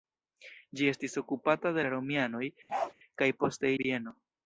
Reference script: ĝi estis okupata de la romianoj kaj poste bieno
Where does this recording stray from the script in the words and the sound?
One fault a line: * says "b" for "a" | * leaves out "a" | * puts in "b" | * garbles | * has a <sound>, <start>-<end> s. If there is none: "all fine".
* has a bark, 2.7-2.9 s